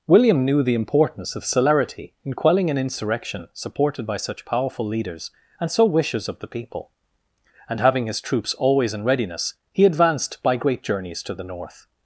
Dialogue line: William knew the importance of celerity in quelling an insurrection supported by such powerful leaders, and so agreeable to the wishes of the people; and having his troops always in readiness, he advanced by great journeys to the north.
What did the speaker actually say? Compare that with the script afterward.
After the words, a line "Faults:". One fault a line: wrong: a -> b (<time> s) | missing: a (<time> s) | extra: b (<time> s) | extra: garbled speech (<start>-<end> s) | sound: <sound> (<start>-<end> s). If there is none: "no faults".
William knew the importance of celerity in quelling an insurrection supported by such powerful leaders, and so wishes of the people; and having his troops always in readiness, he advanced by great journeys to the north.
Faults:
missing: agreeable to the (5.8 s)